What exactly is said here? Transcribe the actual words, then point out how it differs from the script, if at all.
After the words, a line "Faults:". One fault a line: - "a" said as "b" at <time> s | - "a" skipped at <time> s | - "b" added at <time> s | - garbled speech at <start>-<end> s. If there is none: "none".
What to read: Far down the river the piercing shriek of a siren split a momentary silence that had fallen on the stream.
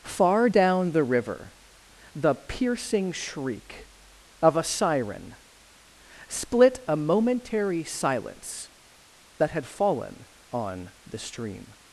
Far down the river the piercing shriek of a siren split a momentary silence that had fallen on the stream.
Faults:
none